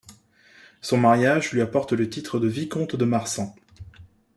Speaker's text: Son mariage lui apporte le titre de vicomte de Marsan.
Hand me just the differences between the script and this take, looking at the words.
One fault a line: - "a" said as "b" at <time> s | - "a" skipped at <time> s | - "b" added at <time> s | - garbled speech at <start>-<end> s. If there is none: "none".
none